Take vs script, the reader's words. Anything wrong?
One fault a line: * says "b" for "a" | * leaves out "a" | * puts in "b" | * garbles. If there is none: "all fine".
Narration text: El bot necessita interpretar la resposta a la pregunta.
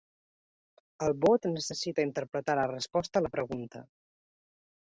all fine